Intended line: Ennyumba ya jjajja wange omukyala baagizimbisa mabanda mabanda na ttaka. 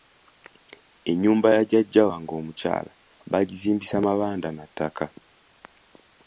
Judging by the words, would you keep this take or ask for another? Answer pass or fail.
fail